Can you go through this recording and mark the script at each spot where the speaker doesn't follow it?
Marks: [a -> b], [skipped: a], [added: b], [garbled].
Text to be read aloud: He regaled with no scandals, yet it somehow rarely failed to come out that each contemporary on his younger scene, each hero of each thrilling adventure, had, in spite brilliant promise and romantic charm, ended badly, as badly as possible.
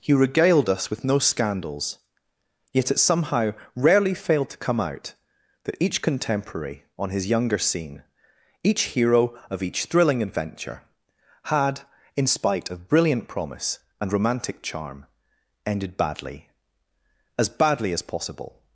He regaled [added: us] with no scandals, yet it somehow rarely failed to come out that each contemporary on his younger scene, each hero of each thrilling adventure, had, in spite [added: of] brilliant promise and romantic charm, ended badly, as badly as possible.